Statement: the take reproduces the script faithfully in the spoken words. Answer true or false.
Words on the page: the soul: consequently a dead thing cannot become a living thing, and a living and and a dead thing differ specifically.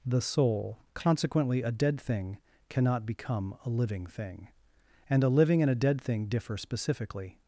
false